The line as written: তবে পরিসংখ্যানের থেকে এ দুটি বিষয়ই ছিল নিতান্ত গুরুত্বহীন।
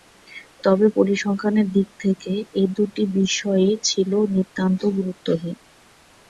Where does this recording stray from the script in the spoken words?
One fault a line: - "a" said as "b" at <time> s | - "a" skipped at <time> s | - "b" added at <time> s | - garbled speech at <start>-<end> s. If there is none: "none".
- "দিক" added at 1.7 s